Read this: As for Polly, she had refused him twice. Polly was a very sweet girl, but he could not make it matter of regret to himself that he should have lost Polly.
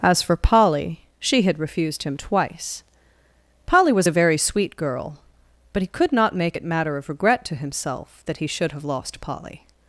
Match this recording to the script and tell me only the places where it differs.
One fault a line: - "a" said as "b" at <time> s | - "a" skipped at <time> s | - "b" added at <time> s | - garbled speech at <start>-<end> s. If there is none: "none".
none